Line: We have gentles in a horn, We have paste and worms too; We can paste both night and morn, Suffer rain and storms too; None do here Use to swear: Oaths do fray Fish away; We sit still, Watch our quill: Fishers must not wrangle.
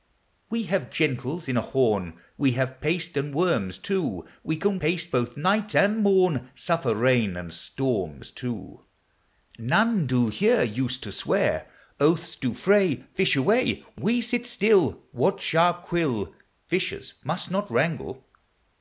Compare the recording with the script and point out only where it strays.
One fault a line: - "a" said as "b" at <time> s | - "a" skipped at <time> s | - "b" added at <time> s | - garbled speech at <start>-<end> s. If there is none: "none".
none